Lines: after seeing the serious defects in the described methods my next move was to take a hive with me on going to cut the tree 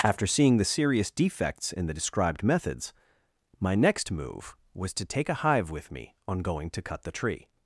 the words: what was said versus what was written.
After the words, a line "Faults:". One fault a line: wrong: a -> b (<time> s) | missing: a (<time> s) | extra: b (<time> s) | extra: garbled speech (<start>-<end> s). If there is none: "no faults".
after seeing the serious defects in the described methods my next move was to take a hive with me on going to cut the tree
Faults:
no faults